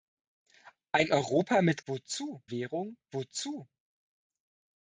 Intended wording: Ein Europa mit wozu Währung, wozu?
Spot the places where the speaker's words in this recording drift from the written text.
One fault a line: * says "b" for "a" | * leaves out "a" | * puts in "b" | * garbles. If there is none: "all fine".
all fine